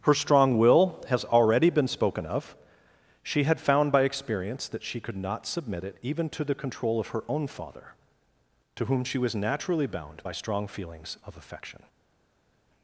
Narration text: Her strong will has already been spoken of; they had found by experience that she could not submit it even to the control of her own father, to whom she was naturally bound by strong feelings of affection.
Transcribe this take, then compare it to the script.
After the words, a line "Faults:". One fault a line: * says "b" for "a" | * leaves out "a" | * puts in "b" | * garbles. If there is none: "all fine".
Her strong will has already been spoken of; she had found by experience that she could not submit it even to the control of her own father, to whom she was naturally bound by strong feelings of affection.
Faults:
* says "she" for "they"